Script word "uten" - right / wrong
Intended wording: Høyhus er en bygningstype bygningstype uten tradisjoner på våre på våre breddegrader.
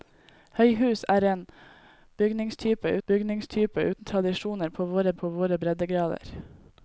right